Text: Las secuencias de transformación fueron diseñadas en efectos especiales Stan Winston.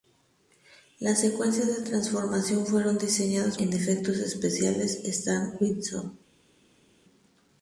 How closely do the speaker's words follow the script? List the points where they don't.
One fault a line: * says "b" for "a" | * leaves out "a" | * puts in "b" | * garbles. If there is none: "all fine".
all fine